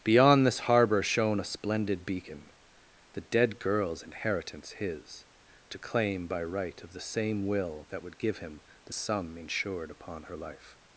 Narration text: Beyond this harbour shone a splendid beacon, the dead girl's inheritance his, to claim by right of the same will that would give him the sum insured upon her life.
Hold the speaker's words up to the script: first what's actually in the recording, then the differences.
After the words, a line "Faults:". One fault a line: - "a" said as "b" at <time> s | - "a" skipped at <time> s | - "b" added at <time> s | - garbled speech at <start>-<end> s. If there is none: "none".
Beyond this harbour shone a splendid beacon, the dead girl's inheritance his, to claim by right of the same will that would give him the sum insured upon her life.
Faults:
none